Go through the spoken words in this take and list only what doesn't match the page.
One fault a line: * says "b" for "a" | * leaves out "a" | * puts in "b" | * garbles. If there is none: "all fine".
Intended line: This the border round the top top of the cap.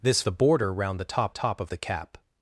all fine